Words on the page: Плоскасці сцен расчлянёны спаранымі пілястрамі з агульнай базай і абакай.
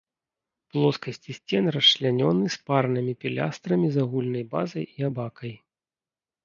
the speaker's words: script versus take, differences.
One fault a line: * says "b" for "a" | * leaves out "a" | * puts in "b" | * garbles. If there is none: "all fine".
all fine